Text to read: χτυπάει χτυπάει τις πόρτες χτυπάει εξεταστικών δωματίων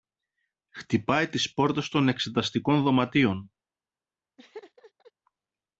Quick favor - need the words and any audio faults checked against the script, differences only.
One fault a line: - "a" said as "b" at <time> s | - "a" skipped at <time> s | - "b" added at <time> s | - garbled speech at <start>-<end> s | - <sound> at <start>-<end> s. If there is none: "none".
- "χτυπάει" skipped at 1.3 s
- "χτυπάει" said as "των" at 1.9 s
- laugh at 4.4-5.1 s